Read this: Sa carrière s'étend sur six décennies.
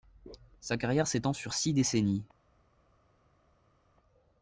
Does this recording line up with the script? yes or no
yes